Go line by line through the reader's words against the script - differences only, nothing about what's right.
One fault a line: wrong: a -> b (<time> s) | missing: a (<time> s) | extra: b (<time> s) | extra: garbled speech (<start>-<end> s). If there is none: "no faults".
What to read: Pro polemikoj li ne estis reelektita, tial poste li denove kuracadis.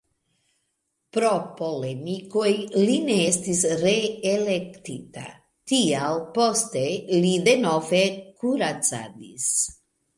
no faults